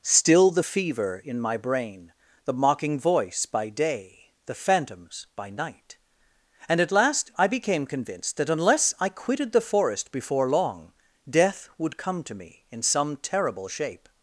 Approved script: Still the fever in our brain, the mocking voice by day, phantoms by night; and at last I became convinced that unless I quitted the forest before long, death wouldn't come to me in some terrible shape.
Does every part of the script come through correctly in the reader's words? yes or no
no